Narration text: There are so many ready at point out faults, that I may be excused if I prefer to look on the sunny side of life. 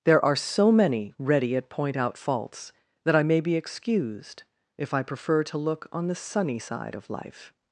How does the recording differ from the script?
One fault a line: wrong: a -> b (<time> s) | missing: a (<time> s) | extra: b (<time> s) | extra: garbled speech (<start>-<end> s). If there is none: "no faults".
no faults